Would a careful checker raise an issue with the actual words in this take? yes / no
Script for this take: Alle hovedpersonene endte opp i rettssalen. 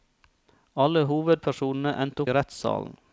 yes